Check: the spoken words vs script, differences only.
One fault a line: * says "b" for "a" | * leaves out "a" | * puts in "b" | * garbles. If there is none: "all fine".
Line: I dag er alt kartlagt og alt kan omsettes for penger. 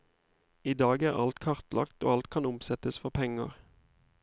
all fine